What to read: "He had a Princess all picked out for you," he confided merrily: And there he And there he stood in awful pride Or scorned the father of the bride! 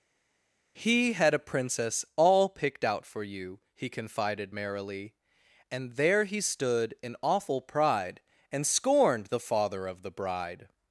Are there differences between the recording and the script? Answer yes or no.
yes